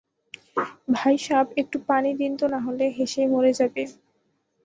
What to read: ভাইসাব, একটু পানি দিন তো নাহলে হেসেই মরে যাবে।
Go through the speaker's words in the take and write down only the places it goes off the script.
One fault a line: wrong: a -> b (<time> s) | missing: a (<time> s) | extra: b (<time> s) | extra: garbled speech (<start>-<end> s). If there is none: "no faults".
no faults